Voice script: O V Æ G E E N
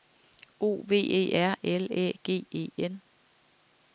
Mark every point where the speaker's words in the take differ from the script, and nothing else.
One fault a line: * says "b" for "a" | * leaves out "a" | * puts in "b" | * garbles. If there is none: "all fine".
* puts in "E R L"
* leaves out "E"